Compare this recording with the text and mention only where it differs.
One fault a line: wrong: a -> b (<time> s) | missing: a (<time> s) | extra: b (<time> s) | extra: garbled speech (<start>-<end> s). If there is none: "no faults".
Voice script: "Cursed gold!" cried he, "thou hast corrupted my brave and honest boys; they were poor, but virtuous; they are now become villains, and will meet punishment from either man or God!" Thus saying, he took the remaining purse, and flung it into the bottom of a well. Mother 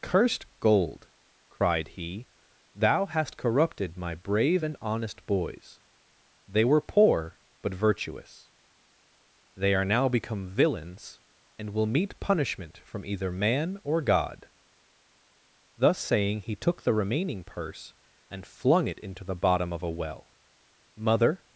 no faults